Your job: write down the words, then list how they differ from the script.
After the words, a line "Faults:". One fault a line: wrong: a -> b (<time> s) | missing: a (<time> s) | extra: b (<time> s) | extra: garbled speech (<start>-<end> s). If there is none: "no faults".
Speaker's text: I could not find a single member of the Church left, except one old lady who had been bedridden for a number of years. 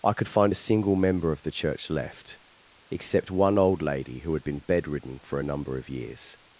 I could find a single member of the Church left, except one old lady who had been bedridden for a number of years.
Faults:
missing: not (0.3 s)